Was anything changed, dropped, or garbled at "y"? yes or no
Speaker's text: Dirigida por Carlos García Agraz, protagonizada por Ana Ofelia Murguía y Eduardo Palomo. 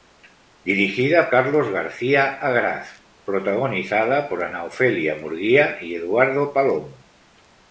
no